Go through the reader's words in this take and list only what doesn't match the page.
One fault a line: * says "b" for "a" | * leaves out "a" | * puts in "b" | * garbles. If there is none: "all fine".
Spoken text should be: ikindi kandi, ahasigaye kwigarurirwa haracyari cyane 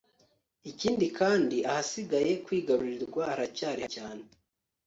all fine